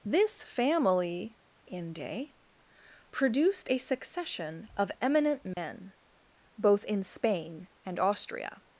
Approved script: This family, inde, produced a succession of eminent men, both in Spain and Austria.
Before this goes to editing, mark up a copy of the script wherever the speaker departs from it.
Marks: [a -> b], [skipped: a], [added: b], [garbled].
This family, inde, produced a succession of eminent men, both in Spain and Austria.